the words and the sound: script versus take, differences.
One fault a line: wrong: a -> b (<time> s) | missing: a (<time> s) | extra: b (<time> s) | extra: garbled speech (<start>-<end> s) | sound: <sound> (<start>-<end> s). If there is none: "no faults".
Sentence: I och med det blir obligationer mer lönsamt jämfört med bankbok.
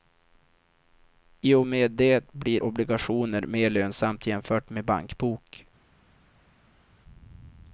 no faults